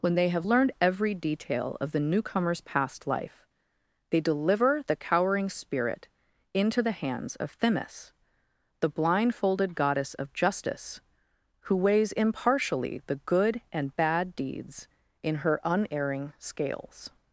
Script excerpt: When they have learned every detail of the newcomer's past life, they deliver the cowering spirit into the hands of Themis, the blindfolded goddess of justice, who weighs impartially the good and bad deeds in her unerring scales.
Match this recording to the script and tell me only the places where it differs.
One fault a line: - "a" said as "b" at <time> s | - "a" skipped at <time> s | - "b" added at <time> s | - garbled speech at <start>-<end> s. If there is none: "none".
none